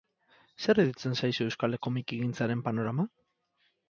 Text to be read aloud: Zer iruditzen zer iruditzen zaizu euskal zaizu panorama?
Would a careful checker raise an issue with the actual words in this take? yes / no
yes